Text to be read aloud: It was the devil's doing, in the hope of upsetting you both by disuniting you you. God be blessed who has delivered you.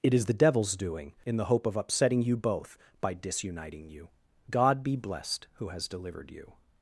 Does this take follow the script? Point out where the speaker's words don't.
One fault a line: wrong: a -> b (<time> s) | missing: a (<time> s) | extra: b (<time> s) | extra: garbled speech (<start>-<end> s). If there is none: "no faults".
wrong: was -> is (0.1 s)
missing: you (4.1 s)